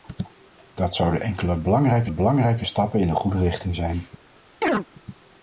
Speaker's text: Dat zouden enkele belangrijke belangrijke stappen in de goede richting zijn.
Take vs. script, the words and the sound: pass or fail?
fail